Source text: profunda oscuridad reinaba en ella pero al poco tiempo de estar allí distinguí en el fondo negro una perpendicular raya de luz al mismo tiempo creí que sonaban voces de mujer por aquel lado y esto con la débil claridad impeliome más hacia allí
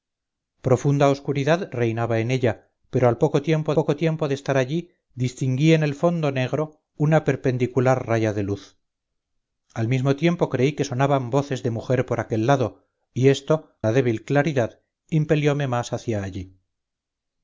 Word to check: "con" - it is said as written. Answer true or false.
false